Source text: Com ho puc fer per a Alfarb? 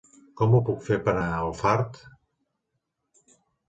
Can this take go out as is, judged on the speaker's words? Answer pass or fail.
pass